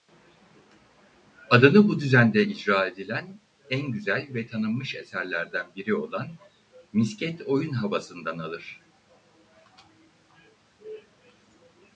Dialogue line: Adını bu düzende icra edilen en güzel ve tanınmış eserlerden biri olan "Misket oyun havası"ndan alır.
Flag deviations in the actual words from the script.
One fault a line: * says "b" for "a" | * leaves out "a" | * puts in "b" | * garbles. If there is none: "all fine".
all fine